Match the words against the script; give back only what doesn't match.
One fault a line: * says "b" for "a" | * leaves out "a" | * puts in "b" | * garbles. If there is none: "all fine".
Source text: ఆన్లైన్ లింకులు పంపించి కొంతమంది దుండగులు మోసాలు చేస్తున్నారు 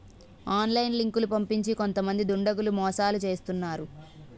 all fine